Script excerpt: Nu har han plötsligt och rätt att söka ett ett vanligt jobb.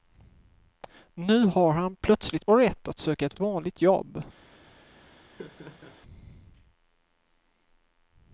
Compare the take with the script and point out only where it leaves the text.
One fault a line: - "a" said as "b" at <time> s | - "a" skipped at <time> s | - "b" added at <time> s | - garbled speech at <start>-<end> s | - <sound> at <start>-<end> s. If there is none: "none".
- laugh at 5.4-6.0 s